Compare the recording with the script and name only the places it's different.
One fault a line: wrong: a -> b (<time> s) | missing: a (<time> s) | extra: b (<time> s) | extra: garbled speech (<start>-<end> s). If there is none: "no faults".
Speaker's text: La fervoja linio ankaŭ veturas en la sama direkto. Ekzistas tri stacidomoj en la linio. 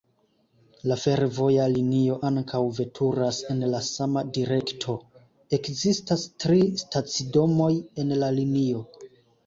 no faults